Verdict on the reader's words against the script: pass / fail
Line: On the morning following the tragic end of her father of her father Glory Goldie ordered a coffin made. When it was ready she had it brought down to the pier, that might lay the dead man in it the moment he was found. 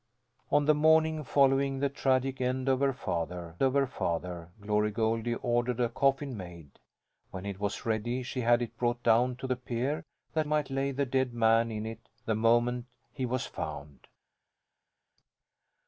pass